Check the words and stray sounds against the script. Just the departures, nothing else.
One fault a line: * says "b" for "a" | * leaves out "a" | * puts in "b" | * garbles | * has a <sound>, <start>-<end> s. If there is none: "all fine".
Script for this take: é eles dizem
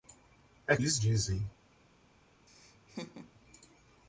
* has a laugh, 2.5-3.3 s